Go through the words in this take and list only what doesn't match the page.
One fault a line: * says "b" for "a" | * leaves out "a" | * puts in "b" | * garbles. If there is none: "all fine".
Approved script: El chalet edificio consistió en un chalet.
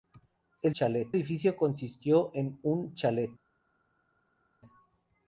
all fine